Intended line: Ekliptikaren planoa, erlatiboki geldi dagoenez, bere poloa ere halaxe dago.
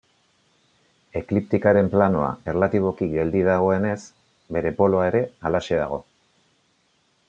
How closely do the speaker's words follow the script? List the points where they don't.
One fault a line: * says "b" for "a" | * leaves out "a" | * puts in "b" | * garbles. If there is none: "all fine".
all fine